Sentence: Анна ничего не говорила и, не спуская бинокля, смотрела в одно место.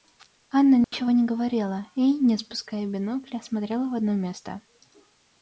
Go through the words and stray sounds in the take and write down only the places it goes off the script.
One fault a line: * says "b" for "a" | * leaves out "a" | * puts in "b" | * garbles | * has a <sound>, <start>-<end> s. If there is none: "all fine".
* has a dropout, 0.8-0.9 s